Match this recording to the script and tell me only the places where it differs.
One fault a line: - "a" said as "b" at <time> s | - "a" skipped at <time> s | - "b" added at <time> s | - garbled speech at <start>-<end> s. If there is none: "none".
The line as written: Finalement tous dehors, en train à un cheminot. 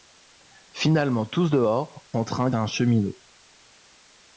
none